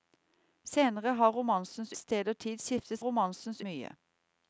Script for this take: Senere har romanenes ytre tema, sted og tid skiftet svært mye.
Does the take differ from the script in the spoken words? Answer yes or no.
yes